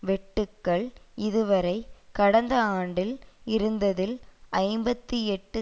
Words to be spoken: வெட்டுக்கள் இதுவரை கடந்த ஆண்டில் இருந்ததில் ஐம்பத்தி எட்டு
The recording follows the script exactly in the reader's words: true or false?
true